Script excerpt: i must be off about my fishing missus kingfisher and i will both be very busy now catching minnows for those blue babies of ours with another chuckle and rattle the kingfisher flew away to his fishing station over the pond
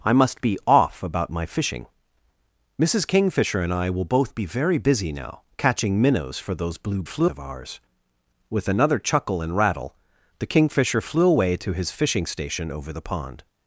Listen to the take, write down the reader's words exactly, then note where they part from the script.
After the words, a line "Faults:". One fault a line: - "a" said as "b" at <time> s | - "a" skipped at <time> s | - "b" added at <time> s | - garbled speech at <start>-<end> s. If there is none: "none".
i must be off about my fishing missus kingfisher and i will both be very busy now catching minnows for those blue flew of ours with another chuckle and rattle the kingfisher flew away to his fishing station over the pond
Faults:
- "babies" said as "flew" at 7.0 s